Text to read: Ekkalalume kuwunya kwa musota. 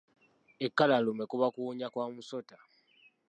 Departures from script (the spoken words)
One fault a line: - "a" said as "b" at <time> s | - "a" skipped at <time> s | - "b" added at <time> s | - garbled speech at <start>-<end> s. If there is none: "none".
- "kuba" added at 1.3 s